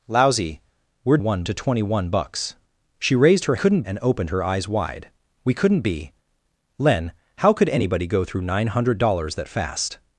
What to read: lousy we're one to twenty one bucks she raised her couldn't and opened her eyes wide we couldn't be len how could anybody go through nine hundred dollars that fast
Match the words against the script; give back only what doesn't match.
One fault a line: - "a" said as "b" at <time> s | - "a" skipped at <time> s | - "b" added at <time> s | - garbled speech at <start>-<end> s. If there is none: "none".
none